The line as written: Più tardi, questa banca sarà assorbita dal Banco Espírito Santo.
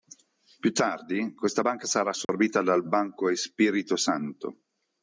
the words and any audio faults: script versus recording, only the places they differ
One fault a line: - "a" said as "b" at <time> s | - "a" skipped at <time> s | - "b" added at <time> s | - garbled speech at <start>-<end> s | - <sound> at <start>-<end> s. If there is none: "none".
- dropout at 2.2-2.3 s